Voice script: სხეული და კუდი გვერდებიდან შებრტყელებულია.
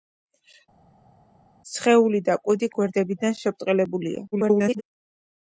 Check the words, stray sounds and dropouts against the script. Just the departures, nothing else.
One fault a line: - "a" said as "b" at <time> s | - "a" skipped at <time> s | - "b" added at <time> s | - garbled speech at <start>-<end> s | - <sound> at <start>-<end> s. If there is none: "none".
- garbled speech at 4.3-4.8 s